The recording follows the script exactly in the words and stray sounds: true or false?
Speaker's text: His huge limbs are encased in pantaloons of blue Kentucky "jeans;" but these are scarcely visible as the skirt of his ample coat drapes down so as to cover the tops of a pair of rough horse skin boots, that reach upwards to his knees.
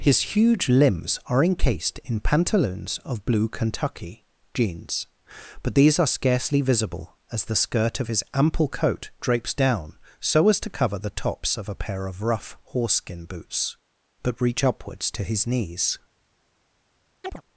false